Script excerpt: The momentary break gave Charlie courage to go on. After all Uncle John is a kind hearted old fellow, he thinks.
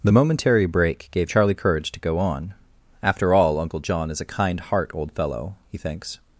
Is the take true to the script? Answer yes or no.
no